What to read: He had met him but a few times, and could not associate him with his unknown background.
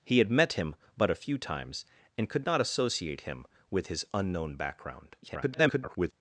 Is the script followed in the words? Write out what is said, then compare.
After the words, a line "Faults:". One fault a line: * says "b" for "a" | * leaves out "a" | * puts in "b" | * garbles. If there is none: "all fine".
He had met him but a few times, and could not associate him with his unknown background. [garbled]
Faults:
* garbles